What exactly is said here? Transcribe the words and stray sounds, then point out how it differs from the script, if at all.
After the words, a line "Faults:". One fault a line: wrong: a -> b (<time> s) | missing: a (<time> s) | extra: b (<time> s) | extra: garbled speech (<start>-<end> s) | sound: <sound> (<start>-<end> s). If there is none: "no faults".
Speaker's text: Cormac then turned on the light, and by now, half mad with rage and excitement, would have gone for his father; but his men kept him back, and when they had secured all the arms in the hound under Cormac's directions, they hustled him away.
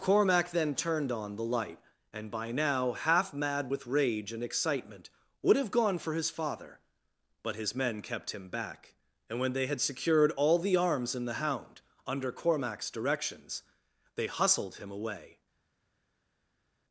Cormac then turned on the light, and by now, half mad with rage and excitement, would have gone for his father; but his men kept him back, and when they had secured all the arms in the hound under Cormac's directions, they hustled him away.
Faults:
no faults